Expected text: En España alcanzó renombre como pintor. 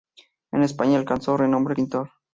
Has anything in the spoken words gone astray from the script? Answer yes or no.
yes